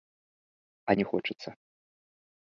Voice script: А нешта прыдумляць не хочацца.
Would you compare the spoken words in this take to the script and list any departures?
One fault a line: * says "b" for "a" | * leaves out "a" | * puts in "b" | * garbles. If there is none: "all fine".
* leaves out "нешта прыдумляць"